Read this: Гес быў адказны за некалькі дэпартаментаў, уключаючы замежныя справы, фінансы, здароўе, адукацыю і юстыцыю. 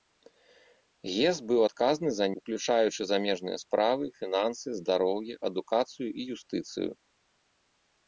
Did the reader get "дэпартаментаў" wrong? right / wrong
wrong